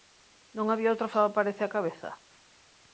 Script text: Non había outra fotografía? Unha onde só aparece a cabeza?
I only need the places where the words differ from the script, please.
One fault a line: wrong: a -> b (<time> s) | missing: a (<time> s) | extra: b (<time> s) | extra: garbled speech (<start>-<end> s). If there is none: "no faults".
missing: fotografía Unha onde (1.1 s)